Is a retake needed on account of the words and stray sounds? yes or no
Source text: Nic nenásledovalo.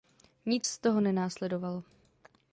yes